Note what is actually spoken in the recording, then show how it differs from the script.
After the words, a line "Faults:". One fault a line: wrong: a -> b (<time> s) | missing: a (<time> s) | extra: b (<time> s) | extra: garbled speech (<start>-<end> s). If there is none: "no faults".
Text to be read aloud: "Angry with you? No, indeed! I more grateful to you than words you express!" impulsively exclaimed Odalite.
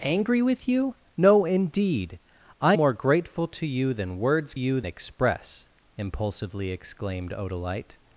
"Angry with you? No, indeed! I more grateful to you than words you express!" impulsively exclaimed Odalite.
Faults:
no faults